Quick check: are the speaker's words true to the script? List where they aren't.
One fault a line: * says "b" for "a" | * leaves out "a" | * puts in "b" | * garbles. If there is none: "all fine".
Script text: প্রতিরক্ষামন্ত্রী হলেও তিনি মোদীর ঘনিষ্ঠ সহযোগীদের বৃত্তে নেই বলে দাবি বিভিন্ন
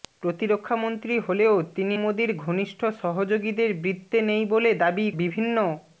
all fine